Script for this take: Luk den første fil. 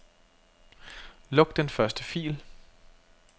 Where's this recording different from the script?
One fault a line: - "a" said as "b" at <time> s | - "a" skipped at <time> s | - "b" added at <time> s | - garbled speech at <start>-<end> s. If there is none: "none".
none